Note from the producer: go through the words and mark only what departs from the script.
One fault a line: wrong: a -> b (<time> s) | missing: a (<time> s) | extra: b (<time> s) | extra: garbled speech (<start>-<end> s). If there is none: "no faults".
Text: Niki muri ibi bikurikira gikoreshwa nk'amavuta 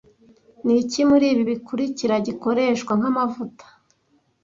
no faults